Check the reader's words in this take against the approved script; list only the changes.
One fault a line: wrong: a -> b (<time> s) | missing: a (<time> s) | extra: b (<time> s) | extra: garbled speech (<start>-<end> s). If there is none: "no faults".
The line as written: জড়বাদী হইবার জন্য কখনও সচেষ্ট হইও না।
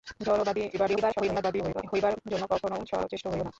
extra: garbled speech (0.7-1.8 s)